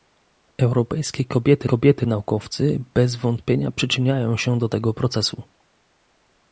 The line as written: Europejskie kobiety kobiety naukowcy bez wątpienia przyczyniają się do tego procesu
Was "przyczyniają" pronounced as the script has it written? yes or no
yes